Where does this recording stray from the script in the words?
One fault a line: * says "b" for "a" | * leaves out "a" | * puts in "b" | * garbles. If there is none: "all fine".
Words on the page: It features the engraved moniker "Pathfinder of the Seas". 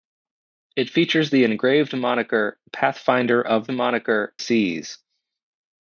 * says "moniker" for "the"